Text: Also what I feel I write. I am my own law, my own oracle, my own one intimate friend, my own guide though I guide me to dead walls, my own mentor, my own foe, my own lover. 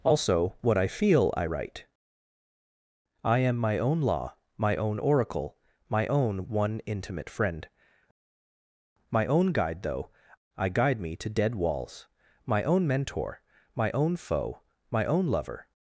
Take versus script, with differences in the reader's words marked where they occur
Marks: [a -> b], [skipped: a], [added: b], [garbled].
Also what I feel I write. I am my own law, my own oracle, my own one intimate friend, my own guide though I guide me to dead walls, my own mentor, my own foe, my own lover.